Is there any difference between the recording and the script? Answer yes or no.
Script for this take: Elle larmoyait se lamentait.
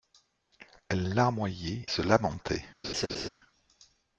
no